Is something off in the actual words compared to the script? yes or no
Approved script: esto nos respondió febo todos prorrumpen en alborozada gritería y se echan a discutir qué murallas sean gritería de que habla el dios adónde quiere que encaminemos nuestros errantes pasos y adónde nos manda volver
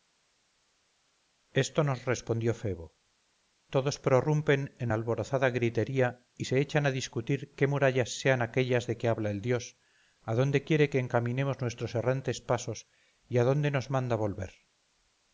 yes